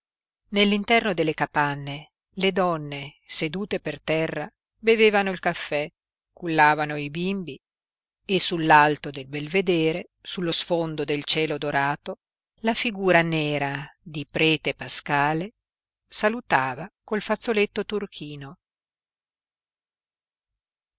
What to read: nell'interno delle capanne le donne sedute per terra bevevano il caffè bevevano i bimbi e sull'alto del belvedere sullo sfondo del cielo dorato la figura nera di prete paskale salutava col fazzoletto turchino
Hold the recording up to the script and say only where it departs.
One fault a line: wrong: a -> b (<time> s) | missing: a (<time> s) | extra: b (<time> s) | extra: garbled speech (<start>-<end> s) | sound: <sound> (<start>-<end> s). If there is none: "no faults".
wrong: bevevano -> cullavano (6.3 s)